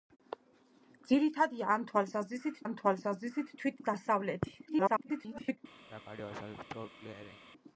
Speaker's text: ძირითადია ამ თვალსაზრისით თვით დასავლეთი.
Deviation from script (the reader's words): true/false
true